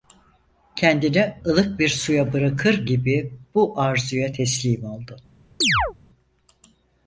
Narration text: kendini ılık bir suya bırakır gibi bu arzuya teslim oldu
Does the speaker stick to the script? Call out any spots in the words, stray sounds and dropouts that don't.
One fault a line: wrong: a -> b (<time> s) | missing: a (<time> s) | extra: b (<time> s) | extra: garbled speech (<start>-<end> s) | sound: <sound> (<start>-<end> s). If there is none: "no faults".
sound: chirp (5.6-5.9 s)